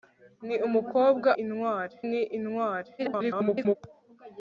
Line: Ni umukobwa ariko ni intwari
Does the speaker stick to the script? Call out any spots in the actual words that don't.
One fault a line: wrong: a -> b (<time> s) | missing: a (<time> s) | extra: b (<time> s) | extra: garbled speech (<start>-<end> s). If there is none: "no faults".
wrong: ariko -> intwari (1.4 s)
extra: garbled speech (3.0-3.8 s)